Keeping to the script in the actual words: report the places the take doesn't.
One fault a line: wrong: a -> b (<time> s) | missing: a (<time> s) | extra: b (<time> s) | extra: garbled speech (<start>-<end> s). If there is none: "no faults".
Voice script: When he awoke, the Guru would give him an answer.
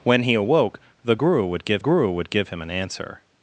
extra: Guru would give (1.8 s)